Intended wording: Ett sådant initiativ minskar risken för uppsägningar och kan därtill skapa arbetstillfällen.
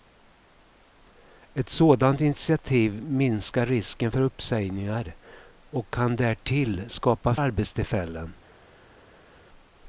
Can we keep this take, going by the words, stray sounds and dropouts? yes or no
yes